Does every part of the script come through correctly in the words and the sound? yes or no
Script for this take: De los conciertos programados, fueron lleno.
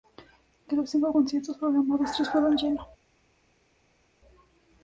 no